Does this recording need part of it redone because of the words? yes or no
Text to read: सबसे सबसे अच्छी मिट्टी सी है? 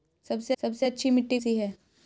no